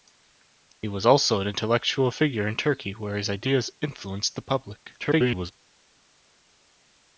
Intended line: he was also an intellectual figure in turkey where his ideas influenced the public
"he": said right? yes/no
yes